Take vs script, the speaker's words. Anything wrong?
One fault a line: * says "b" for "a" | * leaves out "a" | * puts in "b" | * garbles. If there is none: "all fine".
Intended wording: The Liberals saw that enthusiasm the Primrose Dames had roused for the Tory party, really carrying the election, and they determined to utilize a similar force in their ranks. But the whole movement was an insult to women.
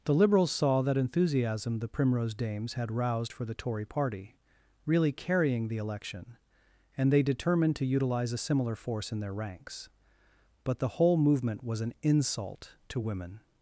all fine